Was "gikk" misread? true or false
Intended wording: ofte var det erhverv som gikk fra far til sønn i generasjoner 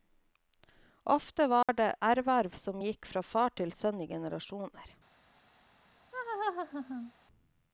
false